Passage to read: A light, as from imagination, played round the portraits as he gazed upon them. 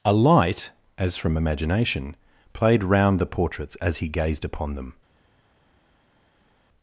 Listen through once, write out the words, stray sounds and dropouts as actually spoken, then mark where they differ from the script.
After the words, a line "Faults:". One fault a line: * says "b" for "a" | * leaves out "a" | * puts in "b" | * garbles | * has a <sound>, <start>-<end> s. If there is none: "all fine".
A light, as from imagination, played round the portraits as he gazed upon them.
Faults:
all fine